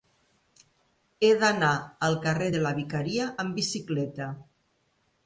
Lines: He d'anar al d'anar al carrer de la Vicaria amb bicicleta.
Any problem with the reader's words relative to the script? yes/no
yes